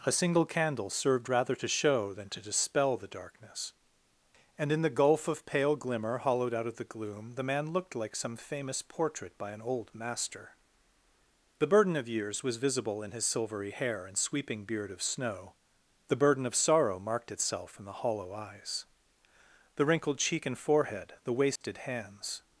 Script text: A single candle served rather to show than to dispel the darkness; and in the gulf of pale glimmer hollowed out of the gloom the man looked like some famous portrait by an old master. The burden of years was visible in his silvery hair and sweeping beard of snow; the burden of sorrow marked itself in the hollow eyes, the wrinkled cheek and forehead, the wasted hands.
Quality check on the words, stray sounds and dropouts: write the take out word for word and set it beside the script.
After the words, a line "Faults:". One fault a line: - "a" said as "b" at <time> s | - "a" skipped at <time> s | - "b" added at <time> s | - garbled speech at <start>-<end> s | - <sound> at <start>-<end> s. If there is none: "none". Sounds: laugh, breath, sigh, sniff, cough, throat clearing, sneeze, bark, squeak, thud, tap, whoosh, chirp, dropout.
A single candle served rather to show than to dispel the darkness; and in the gulf of pale glimmer hollowed out of the gloom the man looked like some famous portrait by an old master. The burden of years was visible in his silvery hair and sweeping beard of snow; the burden of sorrow marked itself in the hollow eyes, the wrinkled cheek and forehead, the wasted hands.
Faults:
- dropout at 21.6-21.6 s